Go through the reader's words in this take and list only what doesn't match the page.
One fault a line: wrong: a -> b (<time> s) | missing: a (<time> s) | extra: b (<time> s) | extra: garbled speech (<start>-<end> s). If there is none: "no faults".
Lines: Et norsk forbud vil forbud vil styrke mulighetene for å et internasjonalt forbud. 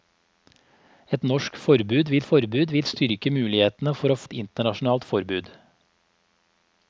no faults